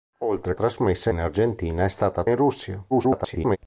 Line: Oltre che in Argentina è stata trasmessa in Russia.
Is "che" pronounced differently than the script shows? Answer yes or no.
yes